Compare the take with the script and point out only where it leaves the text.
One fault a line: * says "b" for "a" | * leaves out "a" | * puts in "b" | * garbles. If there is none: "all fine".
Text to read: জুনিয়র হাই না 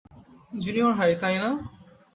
* puts in "তাই"